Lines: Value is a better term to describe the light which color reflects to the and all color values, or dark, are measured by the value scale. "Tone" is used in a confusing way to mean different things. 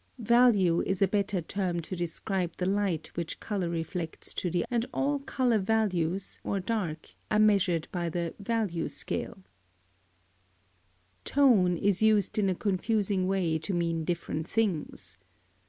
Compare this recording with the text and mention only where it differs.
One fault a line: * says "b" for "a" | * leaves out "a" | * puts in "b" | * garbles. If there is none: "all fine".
all fine